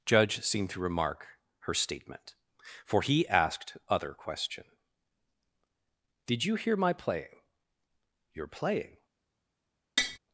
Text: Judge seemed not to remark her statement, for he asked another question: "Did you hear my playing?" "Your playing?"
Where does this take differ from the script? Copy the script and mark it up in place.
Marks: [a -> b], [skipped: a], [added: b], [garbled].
Judge seemed [skipped: not] to remark her statement, for he asked [another -> other] question: "Did you hear my playing?" "Your playing?"